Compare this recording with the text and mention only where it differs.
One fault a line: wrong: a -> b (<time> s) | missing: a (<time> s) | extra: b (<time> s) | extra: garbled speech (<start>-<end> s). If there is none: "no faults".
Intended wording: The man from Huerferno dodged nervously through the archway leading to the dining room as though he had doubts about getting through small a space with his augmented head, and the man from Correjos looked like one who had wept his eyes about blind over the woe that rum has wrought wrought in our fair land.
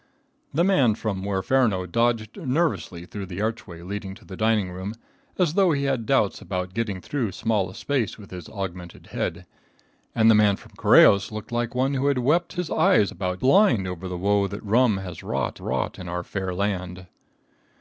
no faults